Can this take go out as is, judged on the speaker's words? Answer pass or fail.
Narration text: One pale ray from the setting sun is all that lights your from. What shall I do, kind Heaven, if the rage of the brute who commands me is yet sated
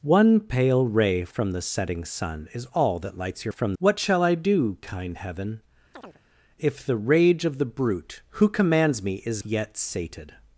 pass